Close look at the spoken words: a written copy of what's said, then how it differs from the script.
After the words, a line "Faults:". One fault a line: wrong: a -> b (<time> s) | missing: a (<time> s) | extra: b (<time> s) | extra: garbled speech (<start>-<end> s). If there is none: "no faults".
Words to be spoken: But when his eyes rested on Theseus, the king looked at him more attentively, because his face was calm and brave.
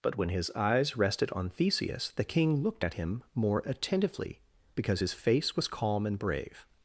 But when his eyes rested on Theseus, the king looked at him more attentively, because his face was calm and brave.
Faults:
no faults